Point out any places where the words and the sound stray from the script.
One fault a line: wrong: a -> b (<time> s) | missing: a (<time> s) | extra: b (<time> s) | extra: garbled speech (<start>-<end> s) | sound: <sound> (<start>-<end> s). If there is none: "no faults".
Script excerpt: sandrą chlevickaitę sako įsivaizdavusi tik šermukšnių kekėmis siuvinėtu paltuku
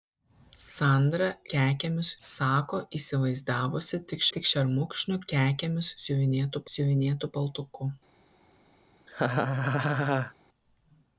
wrong: chlevickaitę -> kekėmis (1.6 s)
extra: tik (4.4 s)
extra: siuvinėtu (6.8 s)
sound: laugh (9.1-10.3 s)